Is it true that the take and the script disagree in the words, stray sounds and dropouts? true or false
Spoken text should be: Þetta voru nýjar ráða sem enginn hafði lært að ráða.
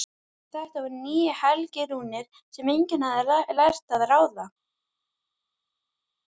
true